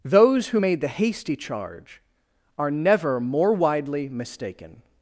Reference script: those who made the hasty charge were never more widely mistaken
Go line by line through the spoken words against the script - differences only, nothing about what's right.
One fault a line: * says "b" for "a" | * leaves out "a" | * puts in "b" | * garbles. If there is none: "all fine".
* says "are" for "were"